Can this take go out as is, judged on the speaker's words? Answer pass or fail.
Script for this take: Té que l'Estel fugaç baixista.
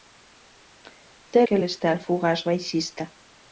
pass